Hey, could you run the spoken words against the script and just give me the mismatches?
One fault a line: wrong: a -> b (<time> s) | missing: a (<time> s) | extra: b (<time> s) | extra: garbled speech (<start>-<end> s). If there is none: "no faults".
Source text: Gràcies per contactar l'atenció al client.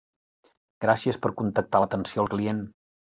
no faults